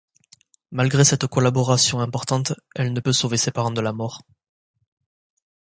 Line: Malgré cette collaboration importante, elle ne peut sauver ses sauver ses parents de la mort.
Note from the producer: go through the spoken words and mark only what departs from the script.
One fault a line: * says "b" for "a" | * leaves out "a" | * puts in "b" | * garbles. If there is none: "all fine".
* leaves out "sauver ses"